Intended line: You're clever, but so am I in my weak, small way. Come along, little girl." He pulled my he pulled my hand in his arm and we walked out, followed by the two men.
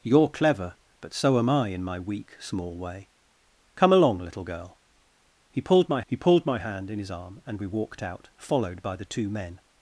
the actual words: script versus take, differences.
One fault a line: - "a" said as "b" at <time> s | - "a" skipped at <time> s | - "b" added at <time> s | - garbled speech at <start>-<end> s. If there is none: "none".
none